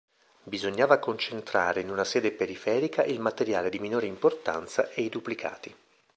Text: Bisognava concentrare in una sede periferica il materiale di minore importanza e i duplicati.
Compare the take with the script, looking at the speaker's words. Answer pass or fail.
pass